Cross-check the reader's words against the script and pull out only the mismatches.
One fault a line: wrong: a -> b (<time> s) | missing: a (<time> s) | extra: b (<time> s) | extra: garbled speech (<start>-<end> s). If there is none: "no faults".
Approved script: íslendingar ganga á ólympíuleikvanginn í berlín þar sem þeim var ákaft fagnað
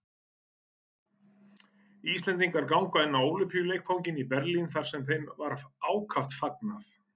extra: inn (3.1 s)